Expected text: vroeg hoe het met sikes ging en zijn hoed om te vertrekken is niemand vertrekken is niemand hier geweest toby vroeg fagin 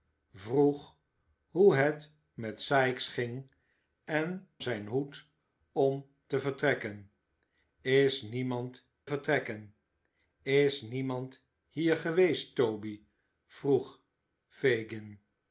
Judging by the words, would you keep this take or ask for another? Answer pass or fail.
pass